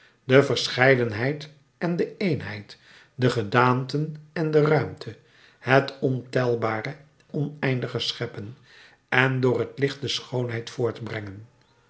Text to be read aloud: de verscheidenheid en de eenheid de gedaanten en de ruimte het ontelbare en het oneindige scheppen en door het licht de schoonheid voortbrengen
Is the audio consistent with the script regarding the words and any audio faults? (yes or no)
no